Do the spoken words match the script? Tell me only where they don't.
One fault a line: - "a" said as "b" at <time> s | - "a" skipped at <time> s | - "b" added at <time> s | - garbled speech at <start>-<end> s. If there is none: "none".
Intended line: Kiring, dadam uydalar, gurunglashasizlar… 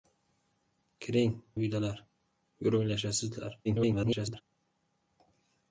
- "dadam" skipped at 1.4 s
- garbled speech at 3.6-4.4 s